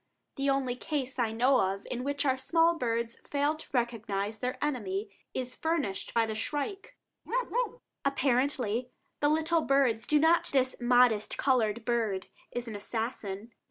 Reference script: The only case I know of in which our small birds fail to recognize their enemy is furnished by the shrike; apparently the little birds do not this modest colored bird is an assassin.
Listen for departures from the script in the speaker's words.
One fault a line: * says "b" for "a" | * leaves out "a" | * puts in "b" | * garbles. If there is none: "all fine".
all fine